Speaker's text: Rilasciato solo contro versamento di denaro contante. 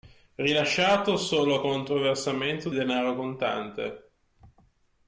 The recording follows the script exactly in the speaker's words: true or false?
false